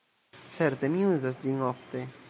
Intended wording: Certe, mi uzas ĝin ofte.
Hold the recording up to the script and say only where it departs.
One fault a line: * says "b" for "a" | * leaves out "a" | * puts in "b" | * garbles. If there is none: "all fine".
all fine